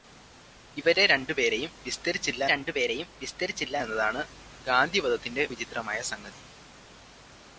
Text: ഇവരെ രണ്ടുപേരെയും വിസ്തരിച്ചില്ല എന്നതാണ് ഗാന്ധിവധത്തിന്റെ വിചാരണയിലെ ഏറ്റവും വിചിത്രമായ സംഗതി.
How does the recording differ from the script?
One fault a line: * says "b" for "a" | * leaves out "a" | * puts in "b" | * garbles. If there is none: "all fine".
* puts in "രണ്ടുപേരെയും വിസ്തരിച്ചില്ല"
* leaves out "വിചാരണയിലെ ഏറ്റവും"